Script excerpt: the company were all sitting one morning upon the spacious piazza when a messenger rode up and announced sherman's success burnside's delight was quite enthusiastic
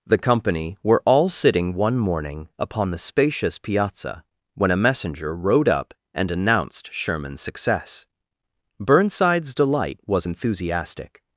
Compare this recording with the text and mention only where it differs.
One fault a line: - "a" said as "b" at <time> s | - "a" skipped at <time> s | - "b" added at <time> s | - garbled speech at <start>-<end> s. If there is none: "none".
- "quite" skipped at 10.3 s